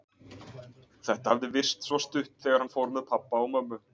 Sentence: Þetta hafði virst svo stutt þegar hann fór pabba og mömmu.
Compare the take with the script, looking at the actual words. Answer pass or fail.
fail